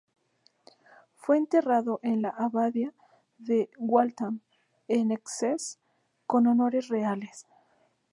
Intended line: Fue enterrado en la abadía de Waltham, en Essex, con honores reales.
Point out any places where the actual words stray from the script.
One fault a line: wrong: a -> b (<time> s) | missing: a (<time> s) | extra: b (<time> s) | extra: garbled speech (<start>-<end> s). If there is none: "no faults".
no faults